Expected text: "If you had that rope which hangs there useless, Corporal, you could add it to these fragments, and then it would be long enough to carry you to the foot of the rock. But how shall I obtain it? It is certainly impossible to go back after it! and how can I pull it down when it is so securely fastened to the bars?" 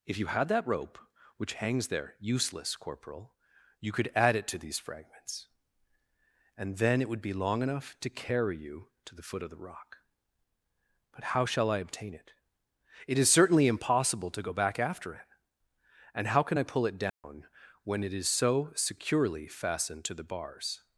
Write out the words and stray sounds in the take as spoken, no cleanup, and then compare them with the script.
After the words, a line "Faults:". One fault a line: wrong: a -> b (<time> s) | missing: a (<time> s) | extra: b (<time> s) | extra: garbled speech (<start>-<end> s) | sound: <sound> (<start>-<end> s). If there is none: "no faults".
"If you had that rope which hangs there useless, Corporal, you could add it to these fragments, and then it would be long enough to carry you to the foot of the rock. But how shall I obtain it? It is certainly impossible to go back after it! and how can I pull it down when it is so securely fastened to the bars?"
Faults:
sound: dropout (17.1-17.2 s)